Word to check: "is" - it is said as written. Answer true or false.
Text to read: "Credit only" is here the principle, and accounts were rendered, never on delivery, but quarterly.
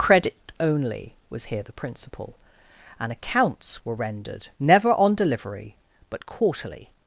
false